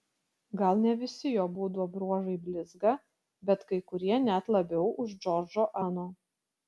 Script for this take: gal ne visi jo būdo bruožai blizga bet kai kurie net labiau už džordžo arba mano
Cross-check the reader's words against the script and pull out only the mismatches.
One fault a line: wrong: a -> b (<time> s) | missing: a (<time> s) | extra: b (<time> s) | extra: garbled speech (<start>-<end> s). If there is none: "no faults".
missing: arba (5.7 s)